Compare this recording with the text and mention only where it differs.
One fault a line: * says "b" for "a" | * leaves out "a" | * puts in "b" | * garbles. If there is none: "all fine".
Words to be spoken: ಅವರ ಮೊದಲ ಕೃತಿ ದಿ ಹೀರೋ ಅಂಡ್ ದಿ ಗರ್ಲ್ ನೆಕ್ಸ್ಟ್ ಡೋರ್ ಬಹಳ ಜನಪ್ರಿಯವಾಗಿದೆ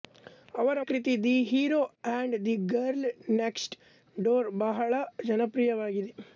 * leaves out "ಮೊದಲ"